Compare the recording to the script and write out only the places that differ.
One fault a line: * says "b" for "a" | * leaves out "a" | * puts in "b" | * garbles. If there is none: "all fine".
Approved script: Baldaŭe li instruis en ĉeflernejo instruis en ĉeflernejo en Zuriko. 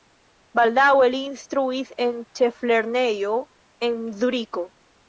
* leaves out "instruis en ĉeflernejo"